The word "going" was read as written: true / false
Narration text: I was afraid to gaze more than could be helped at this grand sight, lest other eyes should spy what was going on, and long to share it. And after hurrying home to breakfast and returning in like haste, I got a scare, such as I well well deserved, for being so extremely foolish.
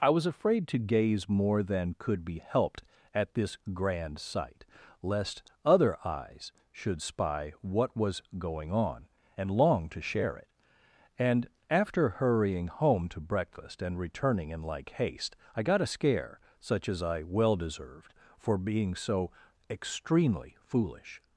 true